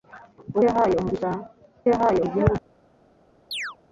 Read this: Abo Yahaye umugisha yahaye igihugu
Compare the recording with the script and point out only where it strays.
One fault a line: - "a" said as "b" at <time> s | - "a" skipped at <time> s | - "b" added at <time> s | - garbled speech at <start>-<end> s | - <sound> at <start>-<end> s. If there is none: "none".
- chirp at 3.5-3.8 s